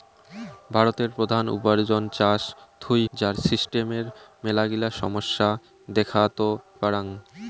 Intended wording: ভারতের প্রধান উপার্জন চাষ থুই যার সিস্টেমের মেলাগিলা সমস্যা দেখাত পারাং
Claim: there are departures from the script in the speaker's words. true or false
false